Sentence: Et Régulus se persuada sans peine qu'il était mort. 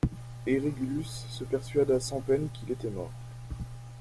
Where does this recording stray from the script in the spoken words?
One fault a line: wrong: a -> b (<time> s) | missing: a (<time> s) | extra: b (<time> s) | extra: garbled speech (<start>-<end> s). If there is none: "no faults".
no faults